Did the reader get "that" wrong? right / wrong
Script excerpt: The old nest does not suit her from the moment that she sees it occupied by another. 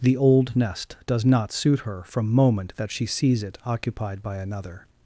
right